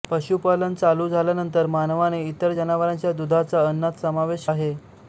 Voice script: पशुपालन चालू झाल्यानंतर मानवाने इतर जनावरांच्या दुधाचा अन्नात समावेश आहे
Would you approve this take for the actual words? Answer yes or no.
yes